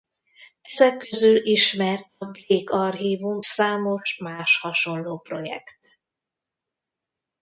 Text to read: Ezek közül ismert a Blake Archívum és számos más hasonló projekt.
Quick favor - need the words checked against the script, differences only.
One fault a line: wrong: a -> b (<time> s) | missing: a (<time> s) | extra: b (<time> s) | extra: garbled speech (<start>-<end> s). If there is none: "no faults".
missing: és (3.4 s)